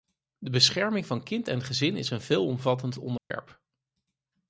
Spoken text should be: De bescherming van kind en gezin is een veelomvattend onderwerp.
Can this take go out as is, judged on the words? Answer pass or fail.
pass